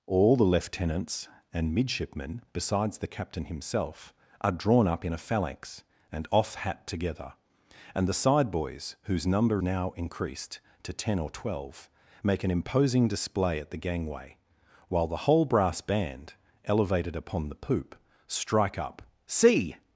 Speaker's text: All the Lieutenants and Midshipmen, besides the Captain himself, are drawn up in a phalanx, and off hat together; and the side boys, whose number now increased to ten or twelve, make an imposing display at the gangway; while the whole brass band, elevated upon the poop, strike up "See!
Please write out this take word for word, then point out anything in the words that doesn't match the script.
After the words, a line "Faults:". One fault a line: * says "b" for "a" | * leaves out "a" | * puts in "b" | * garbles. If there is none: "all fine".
All the Lieutenants and Midshipmen, besides the Captain himself, are drawn up in a phalanx, and off hat together; and the side boys, whose number now increased to ten or twelve, make an imposing display at the gangway; while the whole brass band, elevated upon the poop, strike up "See!
Faults:
all fine